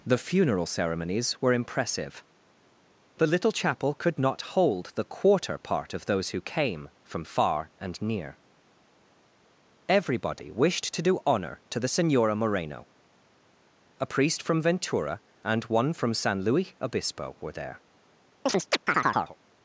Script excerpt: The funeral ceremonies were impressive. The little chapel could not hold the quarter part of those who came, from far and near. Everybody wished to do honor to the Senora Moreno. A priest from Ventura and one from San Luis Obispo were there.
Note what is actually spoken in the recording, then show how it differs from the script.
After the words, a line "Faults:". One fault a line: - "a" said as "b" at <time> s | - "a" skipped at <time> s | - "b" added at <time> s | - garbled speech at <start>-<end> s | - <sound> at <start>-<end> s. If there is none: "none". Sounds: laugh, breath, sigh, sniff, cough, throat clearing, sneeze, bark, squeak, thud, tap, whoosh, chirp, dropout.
The funeral ceremonies were impressive. The little chapel could not hold the quarter part of those who came, from far and near. Everybody wished to do honor to the Senora Moreno. A priest from Ventura and one from San Luis Obispo were there.
Faults:
- chirp at 18.5-19.4 s